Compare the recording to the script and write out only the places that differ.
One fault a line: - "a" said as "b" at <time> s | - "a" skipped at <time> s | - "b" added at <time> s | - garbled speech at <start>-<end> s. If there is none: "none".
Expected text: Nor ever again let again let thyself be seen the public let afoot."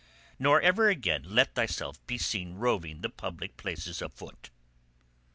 - "again let" skipped at 1.5 s
- "roving" added at 2.5 s
- "let" said as "places" at 3.5 s